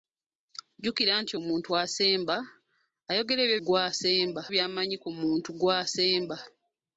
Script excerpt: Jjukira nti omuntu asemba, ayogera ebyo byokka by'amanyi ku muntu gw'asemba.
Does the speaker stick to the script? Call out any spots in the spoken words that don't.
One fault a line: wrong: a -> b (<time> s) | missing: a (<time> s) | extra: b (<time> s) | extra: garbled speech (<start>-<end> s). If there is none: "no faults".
wrong: byokka -> gw'asemba (3.7 s)